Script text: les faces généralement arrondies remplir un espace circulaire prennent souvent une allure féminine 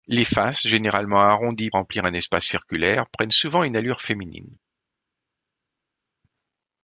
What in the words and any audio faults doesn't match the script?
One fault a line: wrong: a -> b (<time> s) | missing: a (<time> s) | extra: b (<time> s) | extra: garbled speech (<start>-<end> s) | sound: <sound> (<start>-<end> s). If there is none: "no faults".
no faults